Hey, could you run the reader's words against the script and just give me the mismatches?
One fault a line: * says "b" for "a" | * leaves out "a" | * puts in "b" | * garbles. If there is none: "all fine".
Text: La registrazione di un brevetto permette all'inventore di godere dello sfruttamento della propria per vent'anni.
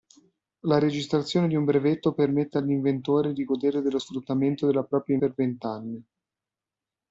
all fine